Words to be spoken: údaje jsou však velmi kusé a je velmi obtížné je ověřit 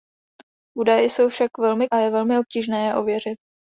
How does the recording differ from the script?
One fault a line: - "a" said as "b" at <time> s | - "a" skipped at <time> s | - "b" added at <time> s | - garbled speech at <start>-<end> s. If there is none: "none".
- "kusé" skipped at 1.9 s